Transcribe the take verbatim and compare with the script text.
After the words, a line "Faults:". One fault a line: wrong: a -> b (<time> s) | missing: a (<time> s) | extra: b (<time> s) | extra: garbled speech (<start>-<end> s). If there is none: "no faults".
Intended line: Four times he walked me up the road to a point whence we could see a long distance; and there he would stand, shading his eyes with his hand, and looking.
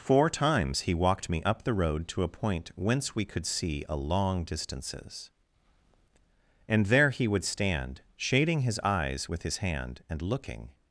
Four times he walked me up the road to a point whence we could see a long distances; and there he would stand, shading his eyes with his hand, and looking.
Faults:
wrong: distance -> distances (4.4 s)